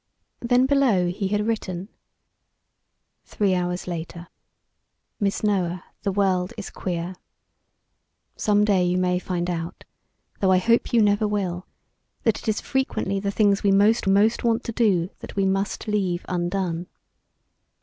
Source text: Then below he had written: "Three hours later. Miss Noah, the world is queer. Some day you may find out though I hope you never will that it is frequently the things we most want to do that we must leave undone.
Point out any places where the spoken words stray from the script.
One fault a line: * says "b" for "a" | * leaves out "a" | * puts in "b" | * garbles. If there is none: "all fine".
* puts in "most"